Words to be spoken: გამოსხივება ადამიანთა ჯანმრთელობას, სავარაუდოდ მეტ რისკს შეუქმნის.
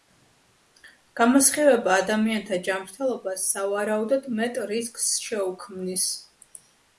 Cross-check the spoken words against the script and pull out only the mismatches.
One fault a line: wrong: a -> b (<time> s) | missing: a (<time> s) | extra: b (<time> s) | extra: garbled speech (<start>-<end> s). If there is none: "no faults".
no faults